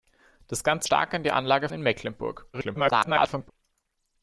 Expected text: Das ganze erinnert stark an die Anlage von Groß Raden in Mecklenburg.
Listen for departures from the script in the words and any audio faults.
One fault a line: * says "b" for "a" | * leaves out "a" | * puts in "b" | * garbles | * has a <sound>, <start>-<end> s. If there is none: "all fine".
* leaves out "erinnert"
* leaves out "von Groß Raden"
* garbles